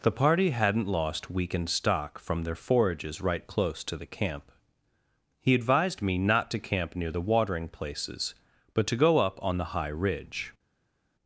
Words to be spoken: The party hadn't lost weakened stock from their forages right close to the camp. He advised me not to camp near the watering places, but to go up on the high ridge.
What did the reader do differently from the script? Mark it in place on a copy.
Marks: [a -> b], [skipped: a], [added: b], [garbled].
The party hadn't lost weakened stock from their forages right close to the camp. He advised me not to camp near the watering places, but to go up on the high ridge.